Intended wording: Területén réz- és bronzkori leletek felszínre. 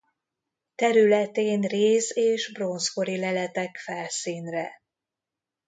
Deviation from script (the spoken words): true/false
false